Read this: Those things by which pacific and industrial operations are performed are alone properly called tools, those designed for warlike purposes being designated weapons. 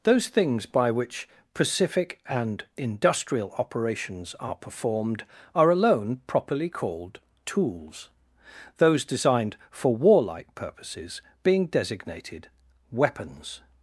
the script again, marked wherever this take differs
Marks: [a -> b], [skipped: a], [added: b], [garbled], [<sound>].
Those things by which pacific and industrial operations are performed are alone properly called tools, those designed for warlike purposes being designated weapons.